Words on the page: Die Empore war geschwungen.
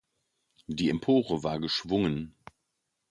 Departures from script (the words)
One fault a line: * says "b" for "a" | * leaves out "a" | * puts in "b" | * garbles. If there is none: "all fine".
all fine